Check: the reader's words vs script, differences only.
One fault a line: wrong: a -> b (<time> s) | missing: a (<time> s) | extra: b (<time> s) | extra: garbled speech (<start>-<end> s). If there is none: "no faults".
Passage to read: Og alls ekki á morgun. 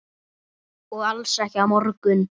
no faults